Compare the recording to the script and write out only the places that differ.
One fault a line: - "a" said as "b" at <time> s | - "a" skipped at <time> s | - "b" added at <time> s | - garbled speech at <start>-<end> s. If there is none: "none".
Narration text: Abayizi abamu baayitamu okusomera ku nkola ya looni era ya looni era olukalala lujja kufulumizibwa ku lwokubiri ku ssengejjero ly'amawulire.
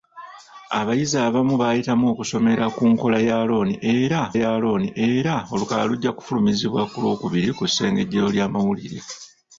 none